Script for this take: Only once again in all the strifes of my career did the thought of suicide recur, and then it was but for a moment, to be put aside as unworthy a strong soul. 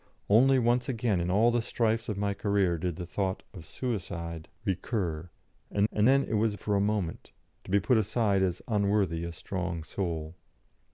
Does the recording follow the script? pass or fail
fail